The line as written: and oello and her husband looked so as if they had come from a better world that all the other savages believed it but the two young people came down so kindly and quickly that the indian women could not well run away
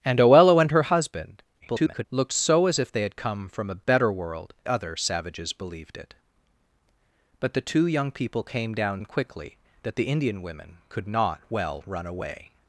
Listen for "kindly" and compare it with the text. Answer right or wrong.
wrong